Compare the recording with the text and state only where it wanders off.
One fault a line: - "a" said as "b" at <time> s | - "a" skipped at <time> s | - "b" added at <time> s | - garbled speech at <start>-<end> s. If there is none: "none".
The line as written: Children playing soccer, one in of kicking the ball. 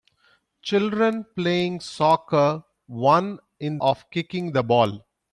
none